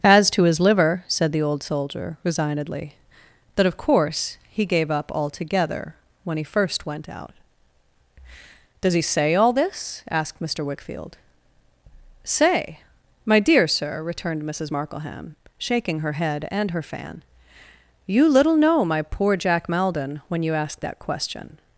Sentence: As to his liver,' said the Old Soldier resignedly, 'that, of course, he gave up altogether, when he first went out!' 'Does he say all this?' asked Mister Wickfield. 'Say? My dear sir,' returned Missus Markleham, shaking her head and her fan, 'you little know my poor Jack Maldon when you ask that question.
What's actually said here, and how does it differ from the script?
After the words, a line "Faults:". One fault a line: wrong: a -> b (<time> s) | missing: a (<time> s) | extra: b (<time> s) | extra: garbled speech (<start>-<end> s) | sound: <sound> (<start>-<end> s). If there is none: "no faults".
As to his liver,' said the Old Soldier resignedly, 'that, of course, he gave up altogether, when he first went out!' 'Does he say all this?' asked Mister Wickfield. 'Say? My dear sir,' returned Missus Markleham, shaking her head and her fan, 'you little know my poor Jack Maldon when you ask that question.
Faults:
no faults